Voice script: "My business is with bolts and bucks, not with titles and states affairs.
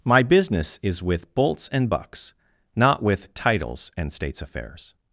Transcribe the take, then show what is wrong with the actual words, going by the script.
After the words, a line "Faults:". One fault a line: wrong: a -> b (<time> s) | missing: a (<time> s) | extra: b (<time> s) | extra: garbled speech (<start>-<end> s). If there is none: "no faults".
"My business is with bolts and bucks, not with titles and states affairs.
Faults:
no faults